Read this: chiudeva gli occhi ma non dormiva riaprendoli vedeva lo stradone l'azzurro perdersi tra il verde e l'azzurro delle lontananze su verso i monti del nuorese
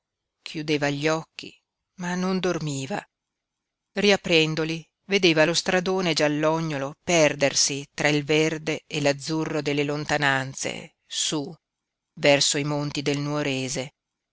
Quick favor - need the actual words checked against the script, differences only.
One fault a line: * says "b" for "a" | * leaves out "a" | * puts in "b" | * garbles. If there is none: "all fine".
* says "giallognolo" for "l'azzurro"